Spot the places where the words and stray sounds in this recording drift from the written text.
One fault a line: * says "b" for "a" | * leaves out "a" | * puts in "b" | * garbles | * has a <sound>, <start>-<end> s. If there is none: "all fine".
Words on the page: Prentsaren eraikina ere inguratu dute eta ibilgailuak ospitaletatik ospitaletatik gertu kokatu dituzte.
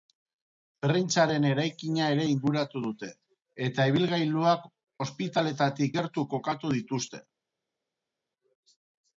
* leaves out "ospitaletatik"